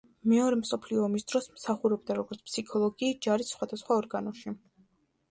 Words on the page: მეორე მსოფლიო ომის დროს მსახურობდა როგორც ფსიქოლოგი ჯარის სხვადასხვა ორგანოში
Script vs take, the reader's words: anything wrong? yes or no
no